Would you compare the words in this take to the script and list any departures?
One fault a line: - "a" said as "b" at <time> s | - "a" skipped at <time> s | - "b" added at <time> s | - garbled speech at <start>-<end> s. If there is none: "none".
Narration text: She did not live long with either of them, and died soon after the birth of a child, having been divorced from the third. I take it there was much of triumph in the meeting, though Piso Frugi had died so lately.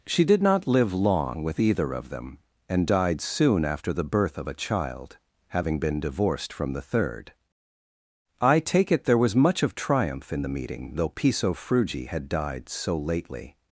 none